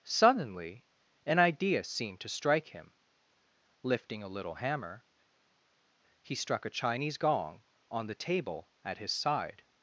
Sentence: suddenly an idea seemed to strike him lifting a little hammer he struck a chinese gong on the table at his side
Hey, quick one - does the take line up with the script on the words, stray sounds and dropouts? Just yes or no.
yes